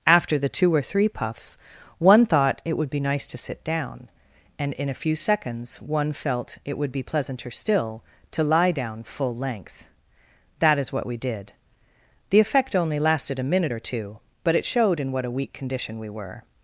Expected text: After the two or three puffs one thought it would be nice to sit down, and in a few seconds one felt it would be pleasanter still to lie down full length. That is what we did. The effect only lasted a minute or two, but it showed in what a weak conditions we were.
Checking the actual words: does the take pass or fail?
fail